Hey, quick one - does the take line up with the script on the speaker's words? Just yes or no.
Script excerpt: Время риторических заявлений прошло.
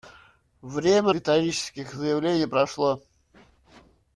yes